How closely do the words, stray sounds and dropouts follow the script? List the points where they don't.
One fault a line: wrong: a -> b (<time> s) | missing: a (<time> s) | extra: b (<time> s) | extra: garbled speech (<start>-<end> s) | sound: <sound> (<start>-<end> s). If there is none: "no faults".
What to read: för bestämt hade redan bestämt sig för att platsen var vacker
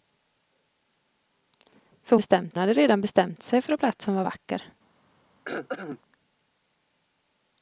sound: throat clearing (5.4-6.0 s)